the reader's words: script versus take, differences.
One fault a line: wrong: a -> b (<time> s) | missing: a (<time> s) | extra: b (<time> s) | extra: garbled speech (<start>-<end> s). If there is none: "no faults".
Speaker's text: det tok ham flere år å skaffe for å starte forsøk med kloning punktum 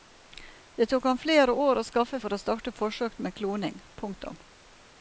no faults